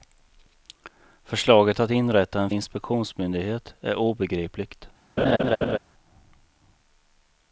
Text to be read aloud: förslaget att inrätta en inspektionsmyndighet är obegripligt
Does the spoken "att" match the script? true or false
true